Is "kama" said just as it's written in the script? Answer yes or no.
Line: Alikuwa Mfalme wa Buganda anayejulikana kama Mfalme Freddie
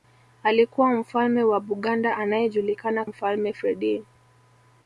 no